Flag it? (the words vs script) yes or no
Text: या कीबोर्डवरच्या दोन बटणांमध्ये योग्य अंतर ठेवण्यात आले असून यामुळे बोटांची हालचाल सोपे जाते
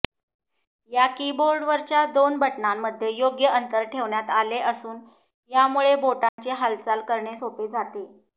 yes